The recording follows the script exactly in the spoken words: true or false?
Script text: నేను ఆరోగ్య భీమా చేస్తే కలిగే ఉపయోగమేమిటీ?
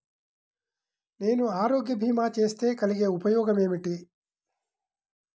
true